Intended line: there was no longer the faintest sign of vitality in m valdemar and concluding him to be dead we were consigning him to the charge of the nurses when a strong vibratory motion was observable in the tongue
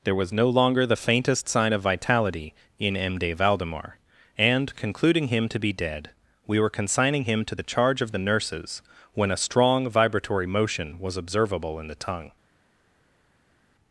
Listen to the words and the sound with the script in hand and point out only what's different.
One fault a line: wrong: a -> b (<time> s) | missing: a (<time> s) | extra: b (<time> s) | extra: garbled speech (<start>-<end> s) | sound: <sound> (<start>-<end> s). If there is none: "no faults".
extra: de (3.2 s)